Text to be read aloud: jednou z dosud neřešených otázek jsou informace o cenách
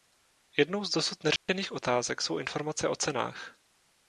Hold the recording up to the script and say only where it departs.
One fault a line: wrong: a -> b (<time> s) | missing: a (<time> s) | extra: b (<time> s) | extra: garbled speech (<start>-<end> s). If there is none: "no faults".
no faults